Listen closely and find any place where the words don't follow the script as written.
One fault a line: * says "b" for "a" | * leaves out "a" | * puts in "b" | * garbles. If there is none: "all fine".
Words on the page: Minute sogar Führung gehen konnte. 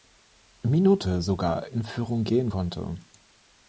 * puts in "in"